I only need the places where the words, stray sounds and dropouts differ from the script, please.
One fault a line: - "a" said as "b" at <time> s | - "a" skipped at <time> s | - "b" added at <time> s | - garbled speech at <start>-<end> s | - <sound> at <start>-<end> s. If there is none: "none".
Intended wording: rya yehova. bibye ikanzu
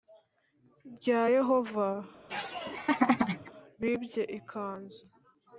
- laugh at 2.3-3.5 s